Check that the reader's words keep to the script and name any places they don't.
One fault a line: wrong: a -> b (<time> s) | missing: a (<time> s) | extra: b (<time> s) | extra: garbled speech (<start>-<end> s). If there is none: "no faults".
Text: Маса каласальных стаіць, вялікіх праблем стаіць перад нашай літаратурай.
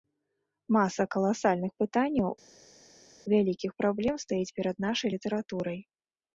wrong: стаіць -> пытанняў (1.8 s)